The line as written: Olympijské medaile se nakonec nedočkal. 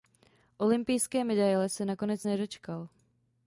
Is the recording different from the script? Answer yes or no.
no